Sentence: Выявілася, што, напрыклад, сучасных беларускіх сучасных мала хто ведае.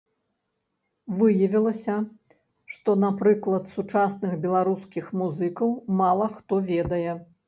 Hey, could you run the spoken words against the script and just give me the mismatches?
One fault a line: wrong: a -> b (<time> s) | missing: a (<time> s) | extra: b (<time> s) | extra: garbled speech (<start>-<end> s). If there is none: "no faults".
wrong: сучасных -> музыкаў (5.2 s)